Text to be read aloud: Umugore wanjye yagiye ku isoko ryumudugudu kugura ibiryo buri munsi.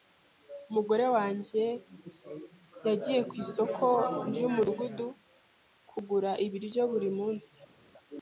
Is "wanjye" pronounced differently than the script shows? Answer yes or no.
no